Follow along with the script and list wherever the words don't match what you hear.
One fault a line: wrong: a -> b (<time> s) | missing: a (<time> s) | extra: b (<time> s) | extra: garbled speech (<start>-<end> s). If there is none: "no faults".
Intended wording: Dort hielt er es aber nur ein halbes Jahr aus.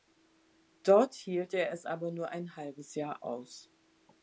no faults